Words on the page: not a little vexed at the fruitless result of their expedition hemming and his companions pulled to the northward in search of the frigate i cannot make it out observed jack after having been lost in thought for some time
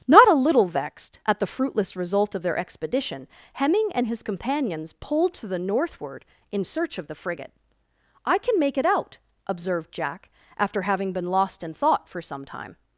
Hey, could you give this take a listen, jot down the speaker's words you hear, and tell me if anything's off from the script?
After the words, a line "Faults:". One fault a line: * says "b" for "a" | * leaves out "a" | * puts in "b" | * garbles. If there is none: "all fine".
not a little vexed at the fruitless result of their expedition hemming and his companions pulled to the northward in search of the frigate i can make it out observed jack after having been lost in thought for some time
Faults:
* says "can" for "cannot"